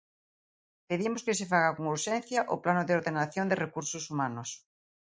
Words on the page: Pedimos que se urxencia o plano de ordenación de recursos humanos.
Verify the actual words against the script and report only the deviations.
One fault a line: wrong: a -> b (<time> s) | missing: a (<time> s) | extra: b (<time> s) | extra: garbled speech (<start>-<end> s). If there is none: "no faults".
extra: faga con (1.5 s)